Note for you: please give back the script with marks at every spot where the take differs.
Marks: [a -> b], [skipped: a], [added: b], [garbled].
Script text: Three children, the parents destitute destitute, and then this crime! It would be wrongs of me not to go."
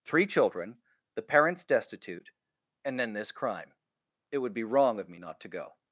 Three children, the parents destitute [skipped: destitute,] and then this crime! It would be [wrongs -> wrong] of me not to go."